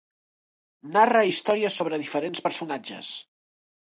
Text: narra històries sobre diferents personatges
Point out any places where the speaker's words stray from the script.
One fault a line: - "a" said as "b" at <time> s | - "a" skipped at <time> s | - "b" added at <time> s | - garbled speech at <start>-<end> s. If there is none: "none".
none